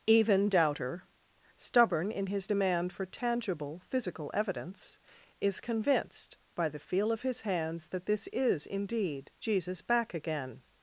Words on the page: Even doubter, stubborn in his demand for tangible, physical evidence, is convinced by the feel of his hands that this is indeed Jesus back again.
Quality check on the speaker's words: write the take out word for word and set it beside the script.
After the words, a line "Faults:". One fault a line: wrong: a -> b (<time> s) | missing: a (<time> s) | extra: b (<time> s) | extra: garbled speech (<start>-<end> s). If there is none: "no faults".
Even doubter, stubborn in his demand for tangible, physical evidence, is convinced by the feel of his hands that this is indeed Jesus back again.
Faults:
no faults